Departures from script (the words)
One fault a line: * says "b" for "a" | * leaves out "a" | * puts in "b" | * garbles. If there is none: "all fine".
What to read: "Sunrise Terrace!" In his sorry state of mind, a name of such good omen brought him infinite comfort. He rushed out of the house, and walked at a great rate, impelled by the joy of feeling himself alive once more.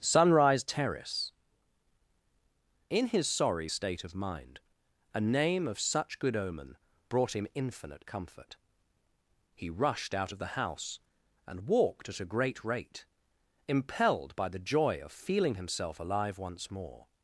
all fine